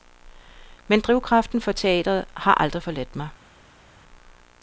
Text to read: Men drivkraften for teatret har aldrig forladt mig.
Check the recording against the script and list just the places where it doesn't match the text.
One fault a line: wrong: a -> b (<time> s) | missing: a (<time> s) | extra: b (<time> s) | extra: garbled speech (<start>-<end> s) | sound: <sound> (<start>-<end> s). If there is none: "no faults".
no faults